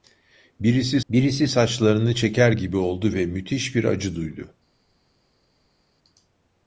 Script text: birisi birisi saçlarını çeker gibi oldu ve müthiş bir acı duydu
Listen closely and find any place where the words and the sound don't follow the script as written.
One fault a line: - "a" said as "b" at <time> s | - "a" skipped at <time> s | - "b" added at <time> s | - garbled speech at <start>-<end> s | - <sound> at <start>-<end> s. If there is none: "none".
none